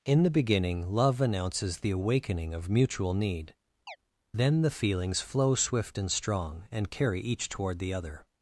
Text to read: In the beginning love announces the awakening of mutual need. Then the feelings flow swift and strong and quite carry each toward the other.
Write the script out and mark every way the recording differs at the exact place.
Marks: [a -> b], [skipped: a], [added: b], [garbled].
In the beginning love announces the awakening of mutual need. Then the feelings flow swift and strong and [skipped: quite] carry each toward the other.